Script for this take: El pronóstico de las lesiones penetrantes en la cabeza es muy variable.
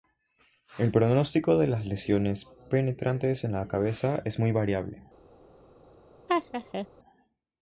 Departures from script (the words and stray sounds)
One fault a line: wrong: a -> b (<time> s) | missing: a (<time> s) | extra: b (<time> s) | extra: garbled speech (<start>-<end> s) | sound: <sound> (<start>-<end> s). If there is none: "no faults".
sound: laugh (6.3-6.9 s)